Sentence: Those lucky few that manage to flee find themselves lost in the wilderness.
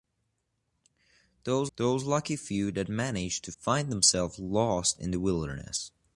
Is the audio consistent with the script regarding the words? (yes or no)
no